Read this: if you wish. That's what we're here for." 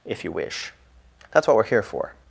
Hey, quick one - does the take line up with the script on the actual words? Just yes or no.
yes